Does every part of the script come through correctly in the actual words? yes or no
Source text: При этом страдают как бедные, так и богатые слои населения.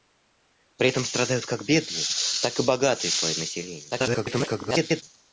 no